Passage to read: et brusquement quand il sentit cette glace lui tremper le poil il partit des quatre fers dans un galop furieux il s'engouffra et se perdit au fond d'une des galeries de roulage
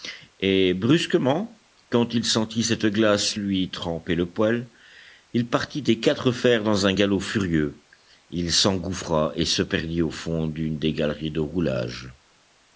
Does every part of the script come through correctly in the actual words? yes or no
yes